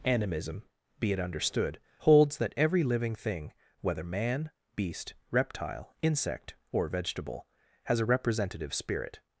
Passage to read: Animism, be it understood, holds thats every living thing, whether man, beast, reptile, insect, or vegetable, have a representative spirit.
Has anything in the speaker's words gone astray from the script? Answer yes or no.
yes